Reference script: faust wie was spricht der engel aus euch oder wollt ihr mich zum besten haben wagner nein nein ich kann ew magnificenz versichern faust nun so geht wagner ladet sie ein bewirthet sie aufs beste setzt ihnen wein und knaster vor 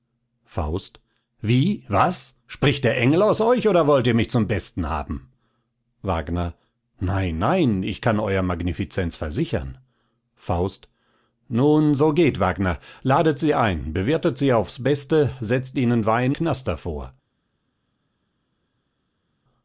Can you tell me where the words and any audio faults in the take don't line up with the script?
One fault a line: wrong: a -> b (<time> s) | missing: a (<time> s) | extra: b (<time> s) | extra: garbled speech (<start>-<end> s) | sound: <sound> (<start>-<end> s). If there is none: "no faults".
missing: und (16.4 s)